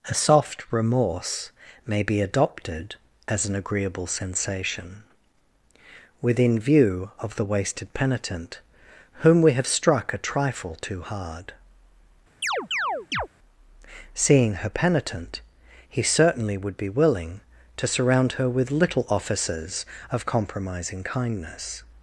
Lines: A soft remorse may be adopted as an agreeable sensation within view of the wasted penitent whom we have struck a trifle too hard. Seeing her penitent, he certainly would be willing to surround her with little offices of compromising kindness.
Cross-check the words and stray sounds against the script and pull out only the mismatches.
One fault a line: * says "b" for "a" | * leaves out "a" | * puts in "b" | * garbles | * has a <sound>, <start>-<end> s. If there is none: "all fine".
* has a chirp, 12.4-13.3 s